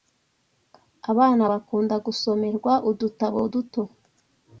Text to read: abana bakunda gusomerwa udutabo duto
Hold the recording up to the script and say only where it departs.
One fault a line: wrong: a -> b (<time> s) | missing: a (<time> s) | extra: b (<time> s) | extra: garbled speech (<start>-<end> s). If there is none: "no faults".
no faults